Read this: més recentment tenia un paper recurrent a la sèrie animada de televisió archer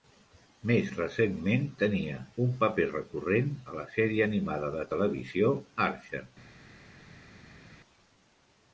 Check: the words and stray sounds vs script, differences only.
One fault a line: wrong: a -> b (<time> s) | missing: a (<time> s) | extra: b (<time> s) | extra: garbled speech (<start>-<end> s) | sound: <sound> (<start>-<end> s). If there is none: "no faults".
no faults